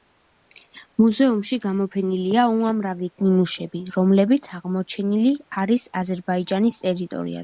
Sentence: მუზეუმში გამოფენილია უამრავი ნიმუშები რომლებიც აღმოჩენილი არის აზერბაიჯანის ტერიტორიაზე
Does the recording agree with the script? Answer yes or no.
yes